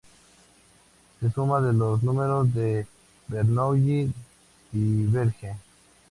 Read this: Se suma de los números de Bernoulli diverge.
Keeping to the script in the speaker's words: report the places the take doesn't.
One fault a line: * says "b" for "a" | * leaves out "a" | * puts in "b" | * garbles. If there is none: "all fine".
all fine